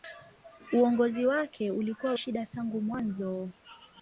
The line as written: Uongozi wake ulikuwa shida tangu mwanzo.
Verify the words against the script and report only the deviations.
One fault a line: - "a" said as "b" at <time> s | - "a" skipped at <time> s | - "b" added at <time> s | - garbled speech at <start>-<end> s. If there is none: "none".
none